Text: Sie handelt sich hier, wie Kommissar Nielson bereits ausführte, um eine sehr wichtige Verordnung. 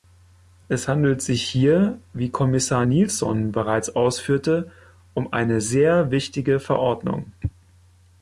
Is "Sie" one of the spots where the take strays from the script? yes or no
yes